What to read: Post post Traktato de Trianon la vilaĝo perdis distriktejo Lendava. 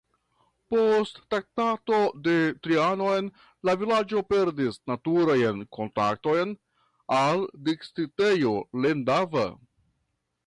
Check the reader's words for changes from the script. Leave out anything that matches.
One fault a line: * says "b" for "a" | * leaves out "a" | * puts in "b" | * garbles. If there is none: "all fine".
* leaves out "post"
* puts in "naturajn kontaktojn al"